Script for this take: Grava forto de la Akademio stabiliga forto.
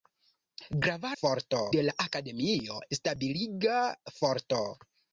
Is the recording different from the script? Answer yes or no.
no